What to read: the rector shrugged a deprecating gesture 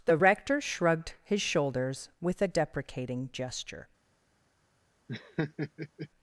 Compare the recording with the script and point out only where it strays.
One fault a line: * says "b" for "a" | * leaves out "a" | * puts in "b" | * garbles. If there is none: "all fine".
* puts in "his shoulders with"